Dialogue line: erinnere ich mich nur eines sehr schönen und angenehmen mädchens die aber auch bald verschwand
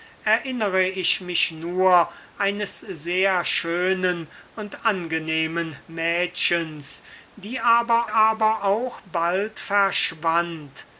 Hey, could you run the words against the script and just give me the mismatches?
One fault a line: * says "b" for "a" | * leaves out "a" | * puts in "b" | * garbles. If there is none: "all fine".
* puts in "aber"